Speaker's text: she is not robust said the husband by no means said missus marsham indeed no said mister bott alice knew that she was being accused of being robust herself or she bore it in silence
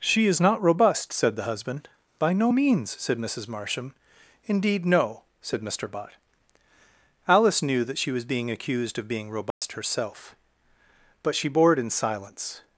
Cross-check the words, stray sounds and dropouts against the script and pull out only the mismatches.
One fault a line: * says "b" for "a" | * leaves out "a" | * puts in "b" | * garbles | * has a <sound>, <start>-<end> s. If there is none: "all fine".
* has a dropout, 9.5-9.6 s
* says "but" for "or"